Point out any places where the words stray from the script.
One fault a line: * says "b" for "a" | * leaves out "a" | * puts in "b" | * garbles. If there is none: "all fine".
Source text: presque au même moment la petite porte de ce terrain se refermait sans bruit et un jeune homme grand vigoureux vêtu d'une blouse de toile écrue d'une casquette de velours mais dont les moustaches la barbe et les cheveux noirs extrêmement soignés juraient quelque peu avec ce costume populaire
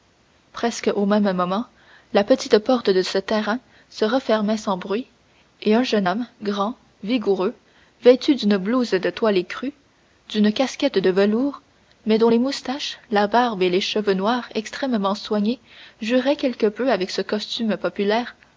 all fine